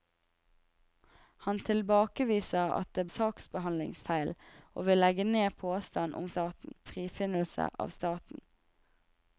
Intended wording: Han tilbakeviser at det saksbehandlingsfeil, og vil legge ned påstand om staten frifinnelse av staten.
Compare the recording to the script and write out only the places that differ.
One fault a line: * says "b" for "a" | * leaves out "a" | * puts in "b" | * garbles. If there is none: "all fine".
all fine